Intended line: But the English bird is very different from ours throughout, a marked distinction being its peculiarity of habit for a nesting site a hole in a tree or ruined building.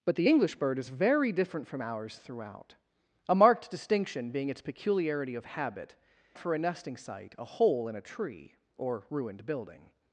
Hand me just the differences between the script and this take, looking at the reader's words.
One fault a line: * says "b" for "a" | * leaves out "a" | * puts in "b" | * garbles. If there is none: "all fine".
all fine